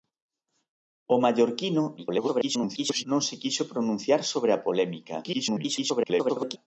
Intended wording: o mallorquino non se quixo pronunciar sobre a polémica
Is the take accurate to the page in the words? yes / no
no